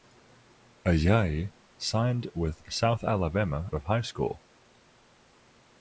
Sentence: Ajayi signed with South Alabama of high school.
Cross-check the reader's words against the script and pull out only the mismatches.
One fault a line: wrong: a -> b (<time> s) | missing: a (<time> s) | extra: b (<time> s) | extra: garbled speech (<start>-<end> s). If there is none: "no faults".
no faults